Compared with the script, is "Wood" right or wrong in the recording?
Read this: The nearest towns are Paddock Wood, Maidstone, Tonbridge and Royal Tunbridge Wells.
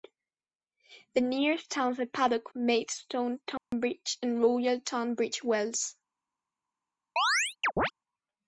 wrong